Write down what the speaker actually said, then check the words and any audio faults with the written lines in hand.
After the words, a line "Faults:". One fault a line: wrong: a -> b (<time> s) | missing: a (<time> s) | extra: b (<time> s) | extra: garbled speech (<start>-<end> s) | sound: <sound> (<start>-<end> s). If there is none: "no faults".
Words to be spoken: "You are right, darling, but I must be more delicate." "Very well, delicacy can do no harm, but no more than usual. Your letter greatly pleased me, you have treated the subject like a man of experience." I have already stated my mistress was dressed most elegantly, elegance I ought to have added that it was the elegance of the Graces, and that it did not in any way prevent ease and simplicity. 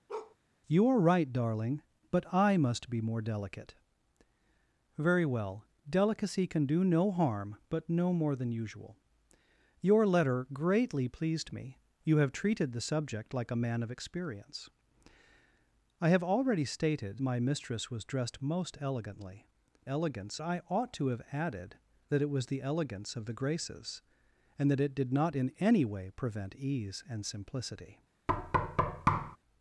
"You are right, darling, but I must be more delicate." "Very well, delicacy can do no harm, but no more than usual. Your letter greatly pleased me, you have treated the subject like a man of experience." I have already stated my mistress was dressed most elegantly, elegance I ought to have added that it was the elegance of the Graces, and that it did not in any way prevent ease and simplicity.
Faults:
sound: bark (0.1-0.4 s)
sound: thud (28.3-29.4 s)